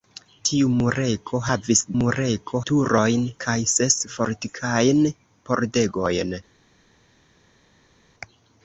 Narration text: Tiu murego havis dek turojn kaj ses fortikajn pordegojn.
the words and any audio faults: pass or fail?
fail